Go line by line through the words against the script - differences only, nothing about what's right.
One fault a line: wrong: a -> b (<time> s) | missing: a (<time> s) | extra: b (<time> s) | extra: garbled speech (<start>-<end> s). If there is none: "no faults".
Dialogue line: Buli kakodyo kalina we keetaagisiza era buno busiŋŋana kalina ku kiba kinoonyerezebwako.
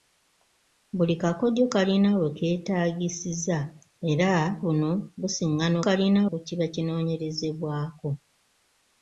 no faults